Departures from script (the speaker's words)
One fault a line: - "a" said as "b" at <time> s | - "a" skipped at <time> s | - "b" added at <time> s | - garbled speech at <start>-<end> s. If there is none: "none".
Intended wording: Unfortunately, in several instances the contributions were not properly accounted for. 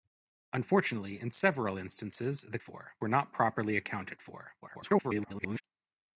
- "contributions" said as "for" at 2.6 s
- garbled speech at 4.6-5.6 s